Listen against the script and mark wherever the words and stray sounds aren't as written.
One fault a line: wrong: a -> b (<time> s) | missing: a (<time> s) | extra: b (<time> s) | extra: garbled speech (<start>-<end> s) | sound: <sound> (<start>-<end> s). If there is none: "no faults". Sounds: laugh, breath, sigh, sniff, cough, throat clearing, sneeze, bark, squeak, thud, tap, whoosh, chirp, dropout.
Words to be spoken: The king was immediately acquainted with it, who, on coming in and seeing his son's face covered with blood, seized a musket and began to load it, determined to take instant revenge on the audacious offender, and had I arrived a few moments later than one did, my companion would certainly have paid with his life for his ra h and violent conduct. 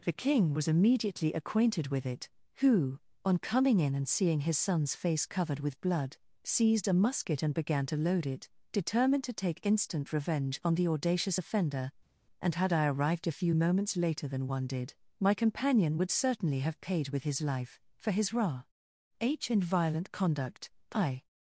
extra: I (20.9 s)